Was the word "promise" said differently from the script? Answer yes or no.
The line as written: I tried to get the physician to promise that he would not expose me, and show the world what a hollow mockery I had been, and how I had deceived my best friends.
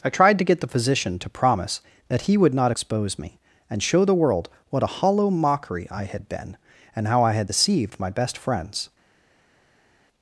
no